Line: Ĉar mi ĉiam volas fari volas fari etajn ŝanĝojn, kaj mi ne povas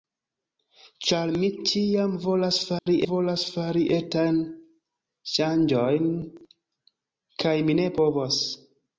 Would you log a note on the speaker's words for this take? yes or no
no